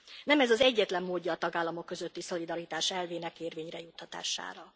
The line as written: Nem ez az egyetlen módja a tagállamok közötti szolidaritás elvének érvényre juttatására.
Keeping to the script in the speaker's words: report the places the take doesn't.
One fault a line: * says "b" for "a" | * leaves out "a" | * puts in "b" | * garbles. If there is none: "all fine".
all fine